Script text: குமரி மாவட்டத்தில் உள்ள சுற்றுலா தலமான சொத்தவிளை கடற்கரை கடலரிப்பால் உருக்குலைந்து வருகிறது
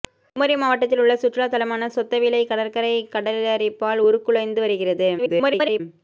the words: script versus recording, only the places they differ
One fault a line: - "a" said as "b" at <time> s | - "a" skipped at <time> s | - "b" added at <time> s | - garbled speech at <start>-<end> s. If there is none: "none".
- garbled speech at 5.2-5.8 s